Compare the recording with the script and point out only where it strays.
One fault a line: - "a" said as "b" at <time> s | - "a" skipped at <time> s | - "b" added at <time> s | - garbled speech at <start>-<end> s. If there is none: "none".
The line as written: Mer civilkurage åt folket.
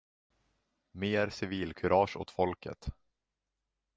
none